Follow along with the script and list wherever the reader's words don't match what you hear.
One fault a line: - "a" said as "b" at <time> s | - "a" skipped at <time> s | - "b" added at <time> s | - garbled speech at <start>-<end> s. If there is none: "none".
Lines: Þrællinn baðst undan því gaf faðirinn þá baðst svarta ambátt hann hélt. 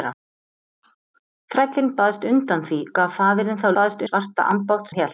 none